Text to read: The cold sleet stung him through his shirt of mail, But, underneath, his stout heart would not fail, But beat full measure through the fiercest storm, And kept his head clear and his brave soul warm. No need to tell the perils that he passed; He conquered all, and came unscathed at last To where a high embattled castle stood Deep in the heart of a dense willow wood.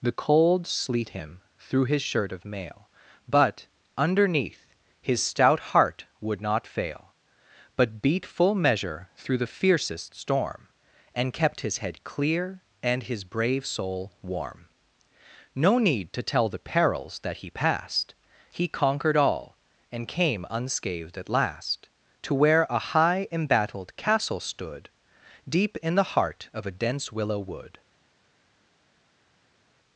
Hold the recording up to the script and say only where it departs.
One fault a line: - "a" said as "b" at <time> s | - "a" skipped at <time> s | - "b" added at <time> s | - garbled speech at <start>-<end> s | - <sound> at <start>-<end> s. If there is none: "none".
- "stung" skipped at 1.1 s